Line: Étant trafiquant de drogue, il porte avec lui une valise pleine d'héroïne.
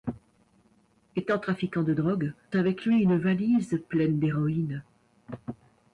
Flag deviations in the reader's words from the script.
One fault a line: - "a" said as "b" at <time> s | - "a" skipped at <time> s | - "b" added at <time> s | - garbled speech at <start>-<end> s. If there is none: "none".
- "il porte" skipped at 2.3 s